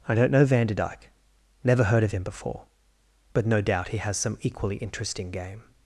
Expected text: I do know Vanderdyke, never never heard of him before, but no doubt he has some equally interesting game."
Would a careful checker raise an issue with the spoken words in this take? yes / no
yes